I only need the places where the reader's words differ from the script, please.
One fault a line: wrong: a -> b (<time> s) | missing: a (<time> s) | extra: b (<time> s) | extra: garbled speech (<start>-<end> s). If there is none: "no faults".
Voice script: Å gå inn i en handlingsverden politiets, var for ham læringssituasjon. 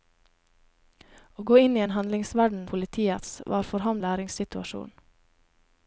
no faults